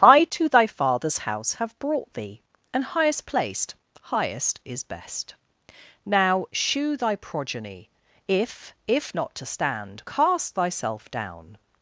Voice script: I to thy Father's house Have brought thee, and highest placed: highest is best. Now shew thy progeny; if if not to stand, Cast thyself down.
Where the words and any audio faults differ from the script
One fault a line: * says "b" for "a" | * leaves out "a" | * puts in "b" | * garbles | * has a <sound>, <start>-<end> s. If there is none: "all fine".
all fine